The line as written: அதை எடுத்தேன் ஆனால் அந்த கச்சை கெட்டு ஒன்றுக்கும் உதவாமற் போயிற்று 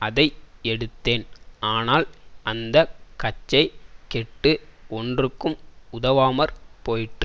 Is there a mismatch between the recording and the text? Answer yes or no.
no